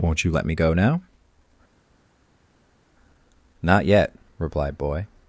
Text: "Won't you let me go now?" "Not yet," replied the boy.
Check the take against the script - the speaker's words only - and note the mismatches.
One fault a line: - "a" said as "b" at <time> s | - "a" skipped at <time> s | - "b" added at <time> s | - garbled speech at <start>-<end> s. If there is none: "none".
- "the" skipped at 4.8 s